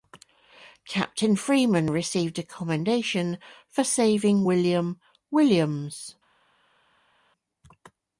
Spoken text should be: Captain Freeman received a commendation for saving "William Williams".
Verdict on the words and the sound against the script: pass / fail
pass